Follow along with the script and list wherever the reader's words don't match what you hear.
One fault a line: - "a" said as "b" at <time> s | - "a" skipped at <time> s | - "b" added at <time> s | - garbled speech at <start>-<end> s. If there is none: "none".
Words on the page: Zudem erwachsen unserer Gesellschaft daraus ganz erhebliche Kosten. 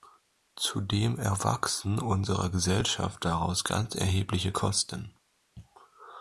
none